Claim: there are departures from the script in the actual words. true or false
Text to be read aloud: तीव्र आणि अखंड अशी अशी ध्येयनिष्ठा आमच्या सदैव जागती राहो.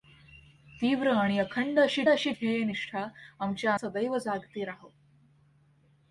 false